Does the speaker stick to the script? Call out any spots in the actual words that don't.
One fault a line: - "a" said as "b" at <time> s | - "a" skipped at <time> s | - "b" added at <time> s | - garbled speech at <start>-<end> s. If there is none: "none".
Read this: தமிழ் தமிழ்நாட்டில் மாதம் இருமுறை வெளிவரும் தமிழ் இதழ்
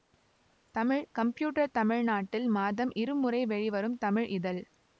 - "கம்ப்யூட்டர்" added at 1.1 s